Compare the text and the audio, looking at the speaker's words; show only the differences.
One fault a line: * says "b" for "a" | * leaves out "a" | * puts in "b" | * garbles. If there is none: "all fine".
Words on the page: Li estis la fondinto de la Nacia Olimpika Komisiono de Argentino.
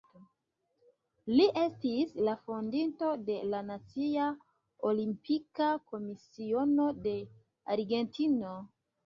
all fine